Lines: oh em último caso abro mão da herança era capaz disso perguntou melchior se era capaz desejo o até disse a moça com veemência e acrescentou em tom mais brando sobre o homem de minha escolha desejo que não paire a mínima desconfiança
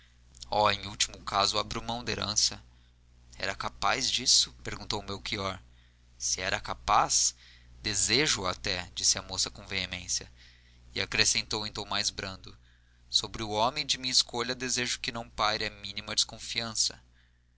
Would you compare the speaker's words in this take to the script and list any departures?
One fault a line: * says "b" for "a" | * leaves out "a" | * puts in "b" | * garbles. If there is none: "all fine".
all fine